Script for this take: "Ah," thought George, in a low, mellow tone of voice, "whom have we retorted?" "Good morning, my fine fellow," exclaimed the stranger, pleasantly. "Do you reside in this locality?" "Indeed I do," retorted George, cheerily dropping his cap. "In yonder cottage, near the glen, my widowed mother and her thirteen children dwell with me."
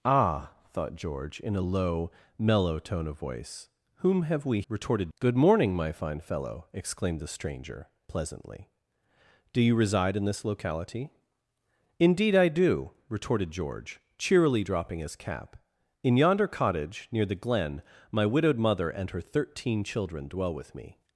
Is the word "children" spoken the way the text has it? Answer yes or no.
yes